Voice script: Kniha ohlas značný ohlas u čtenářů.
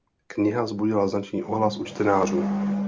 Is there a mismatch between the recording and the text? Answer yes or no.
yes